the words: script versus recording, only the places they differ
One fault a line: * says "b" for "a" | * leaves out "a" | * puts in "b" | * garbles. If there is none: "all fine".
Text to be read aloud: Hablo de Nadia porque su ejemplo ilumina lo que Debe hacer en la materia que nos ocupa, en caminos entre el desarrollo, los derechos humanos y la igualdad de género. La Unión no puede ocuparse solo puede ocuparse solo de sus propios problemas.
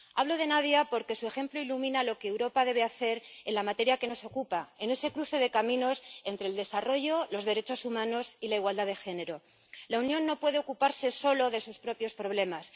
* puts in "Europa"
* puts in "ese cruce de"
* leaves out "puede ocuparse solo"